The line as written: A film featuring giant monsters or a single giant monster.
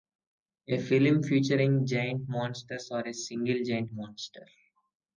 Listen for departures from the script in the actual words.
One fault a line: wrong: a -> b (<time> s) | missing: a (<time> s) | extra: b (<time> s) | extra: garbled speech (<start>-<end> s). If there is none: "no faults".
no faults